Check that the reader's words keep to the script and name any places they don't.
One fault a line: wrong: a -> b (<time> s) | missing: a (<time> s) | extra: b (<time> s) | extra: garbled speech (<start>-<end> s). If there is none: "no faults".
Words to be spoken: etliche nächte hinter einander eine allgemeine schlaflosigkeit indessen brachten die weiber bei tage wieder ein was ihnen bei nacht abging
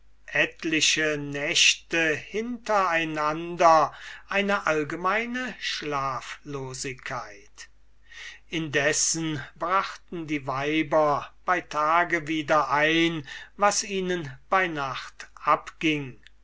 no faults